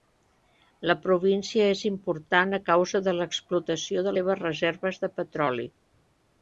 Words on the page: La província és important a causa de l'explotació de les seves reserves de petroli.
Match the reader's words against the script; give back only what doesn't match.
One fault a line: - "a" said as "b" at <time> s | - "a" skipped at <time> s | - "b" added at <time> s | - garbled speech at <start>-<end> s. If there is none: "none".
- "les" skipped at 4.2 s